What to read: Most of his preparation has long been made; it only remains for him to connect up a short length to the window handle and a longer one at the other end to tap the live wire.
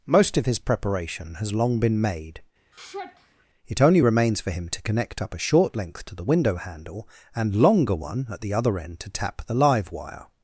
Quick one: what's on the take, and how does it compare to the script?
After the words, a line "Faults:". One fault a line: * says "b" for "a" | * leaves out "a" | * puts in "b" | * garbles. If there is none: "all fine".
Most of his preparation has long been made; it only remains for him to connect up a short length to the window handle and longer one at the other end to tap the live wire.
Faults:
* leaves out "a"